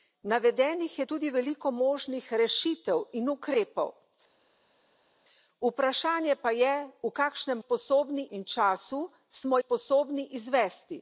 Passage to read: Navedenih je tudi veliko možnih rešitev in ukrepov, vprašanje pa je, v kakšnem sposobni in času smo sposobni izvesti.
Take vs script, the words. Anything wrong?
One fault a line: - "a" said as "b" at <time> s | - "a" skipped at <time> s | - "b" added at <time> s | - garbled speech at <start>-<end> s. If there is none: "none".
none